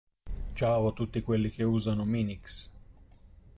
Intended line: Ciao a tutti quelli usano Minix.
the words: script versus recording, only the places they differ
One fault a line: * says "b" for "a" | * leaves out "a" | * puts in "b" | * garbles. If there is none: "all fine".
* puts in "che"